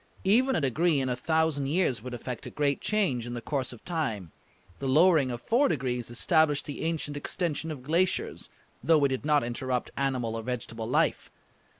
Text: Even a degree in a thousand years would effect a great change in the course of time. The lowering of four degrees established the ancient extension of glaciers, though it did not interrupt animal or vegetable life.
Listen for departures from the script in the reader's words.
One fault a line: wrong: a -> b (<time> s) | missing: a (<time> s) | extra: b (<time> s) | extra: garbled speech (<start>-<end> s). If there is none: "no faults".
no faults